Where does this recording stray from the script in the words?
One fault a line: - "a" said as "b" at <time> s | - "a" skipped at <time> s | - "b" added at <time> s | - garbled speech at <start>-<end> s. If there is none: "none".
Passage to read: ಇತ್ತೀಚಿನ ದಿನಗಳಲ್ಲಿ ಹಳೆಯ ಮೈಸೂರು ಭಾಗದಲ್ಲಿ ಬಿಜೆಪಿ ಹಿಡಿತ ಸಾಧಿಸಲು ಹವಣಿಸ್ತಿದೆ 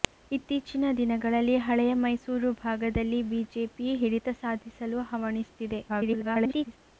- garbled speech at 5.9-6.8 s